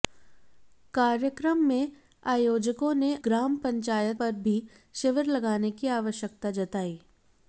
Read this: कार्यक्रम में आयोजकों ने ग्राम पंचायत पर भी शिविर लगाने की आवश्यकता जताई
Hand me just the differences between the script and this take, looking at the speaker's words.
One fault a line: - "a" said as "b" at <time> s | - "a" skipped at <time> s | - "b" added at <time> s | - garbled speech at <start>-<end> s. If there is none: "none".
none